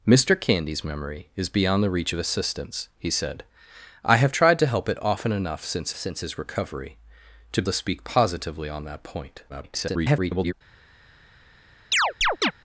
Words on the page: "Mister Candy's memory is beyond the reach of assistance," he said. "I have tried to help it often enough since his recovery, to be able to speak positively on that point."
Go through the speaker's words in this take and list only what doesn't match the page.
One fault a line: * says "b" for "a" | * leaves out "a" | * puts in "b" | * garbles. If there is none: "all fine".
* puts in "since"
* leaves out "be able"
* garbles